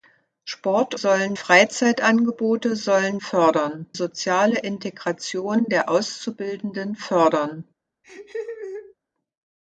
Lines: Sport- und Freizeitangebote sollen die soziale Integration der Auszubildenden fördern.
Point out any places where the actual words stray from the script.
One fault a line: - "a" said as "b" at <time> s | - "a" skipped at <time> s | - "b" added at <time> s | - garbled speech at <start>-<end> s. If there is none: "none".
- "und" said as "sollen" at 0.9 s
- "die" said as "fördern" at 3.2 s